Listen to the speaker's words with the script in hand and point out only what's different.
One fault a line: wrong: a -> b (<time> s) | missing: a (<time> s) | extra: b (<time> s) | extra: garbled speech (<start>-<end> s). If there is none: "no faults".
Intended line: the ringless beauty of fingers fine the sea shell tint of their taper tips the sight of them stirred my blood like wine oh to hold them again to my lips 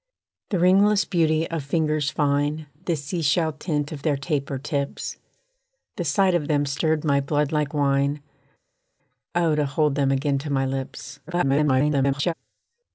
extra: garbled speech (11.3-12.3 s)